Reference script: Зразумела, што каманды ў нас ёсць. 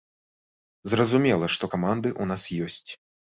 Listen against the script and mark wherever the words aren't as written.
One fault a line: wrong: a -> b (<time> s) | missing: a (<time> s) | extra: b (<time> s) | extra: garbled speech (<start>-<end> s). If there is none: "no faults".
no faults